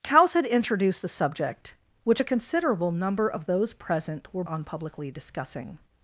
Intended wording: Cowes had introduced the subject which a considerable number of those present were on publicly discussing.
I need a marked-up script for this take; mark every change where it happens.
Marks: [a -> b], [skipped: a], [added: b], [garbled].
Cowes had introduced the subject which a considerable number of those present were on publicly discussing.